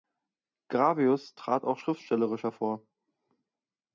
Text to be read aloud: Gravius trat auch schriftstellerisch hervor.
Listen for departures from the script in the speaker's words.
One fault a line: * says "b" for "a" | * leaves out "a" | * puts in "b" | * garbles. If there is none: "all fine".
all fine